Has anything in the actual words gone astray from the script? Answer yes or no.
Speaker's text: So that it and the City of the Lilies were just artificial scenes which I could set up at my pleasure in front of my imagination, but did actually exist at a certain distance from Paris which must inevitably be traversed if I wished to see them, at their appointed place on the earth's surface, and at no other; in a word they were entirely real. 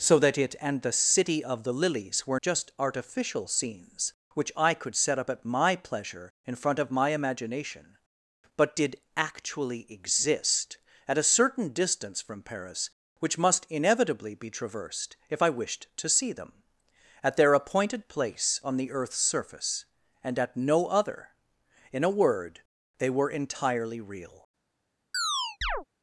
no